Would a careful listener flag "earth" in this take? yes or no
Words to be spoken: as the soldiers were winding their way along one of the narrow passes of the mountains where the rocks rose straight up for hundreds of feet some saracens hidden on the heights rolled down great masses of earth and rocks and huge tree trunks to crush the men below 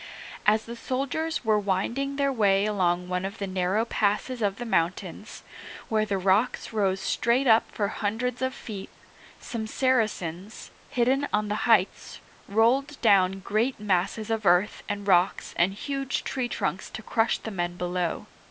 no